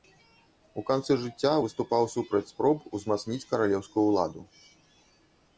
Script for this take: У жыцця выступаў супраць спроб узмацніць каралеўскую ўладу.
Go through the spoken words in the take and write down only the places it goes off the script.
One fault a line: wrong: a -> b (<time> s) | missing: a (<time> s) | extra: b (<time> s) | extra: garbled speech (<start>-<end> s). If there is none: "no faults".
extra: канцы (0.9 s)